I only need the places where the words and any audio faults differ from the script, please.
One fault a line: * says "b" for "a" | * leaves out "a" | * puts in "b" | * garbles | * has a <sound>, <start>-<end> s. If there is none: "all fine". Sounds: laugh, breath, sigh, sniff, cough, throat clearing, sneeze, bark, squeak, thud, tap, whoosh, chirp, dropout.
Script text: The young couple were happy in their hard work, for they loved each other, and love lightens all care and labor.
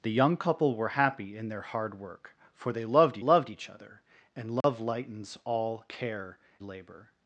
* puts in "loved"
* has a dropout, 4.6-4.6 s
* leaves out "and"